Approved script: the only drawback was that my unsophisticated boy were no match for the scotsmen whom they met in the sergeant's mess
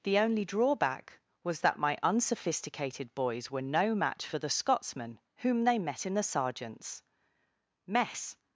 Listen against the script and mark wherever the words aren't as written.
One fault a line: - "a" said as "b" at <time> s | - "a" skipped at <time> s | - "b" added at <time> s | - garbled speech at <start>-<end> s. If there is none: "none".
- "boy" said as "boys" at 3.1 s